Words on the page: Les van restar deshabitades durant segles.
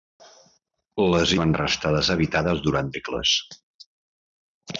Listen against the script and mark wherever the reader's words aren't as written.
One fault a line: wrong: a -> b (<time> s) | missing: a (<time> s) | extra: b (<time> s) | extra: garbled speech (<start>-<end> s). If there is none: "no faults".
no faults